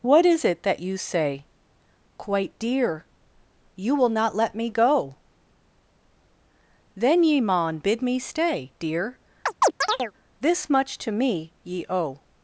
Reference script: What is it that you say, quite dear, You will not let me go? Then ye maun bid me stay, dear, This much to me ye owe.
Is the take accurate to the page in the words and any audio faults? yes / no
no